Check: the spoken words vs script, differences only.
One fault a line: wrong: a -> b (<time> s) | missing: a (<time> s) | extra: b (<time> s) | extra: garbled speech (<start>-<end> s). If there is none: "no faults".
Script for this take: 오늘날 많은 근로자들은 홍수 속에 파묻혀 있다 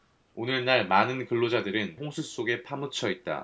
no faults